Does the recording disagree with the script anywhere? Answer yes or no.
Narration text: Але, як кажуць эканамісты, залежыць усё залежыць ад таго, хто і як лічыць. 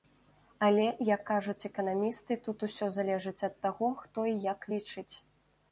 yes